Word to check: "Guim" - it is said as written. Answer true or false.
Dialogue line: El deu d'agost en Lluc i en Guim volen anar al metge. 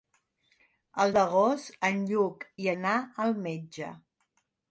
false